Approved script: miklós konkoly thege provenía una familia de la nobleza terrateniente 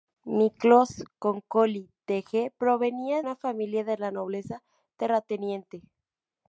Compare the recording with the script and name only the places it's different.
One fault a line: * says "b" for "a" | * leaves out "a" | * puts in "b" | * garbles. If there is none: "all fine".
all fine